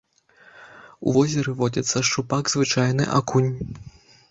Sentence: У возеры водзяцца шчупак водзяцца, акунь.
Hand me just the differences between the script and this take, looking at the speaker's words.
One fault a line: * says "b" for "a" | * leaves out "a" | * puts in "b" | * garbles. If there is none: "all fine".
* says "звычайны" for "водзяцца"